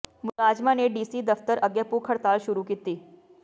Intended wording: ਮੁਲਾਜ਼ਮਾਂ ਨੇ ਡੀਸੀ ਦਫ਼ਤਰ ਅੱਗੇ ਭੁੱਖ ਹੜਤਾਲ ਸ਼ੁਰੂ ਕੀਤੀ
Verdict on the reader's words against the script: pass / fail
pass